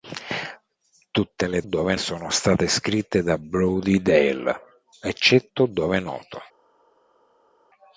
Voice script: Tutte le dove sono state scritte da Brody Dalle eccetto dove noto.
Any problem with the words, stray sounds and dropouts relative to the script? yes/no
no